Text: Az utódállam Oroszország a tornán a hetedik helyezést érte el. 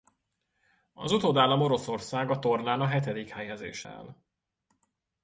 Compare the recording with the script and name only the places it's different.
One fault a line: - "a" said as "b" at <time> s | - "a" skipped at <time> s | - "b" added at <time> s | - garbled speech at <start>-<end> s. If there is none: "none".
- "érte" skipped at 3.9 s